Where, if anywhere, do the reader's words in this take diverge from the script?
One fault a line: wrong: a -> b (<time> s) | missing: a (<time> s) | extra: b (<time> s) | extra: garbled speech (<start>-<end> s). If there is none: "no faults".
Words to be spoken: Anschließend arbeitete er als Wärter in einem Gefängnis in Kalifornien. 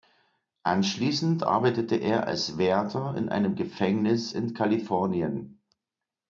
no faults